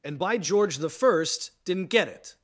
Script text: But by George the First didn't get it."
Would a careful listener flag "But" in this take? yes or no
yes